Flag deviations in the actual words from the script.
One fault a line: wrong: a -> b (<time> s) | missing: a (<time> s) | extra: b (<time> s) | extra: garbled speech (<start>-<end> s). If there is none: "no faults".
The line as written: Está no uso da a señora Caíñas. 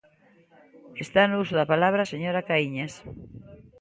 extra: palabra (1.7 s)